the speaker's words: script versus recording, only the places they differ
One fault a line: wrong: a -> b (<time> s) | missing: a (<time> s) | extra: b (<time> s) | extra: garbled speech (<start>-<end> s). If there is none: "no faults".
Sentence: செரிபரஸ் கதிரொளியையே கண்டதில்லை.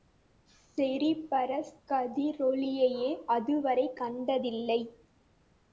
extra: அதுவரை (3.3 s)